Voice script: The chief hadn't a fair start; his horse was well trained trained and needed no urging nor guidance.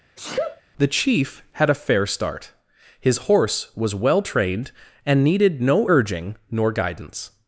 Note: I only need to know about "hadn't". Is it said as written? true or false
false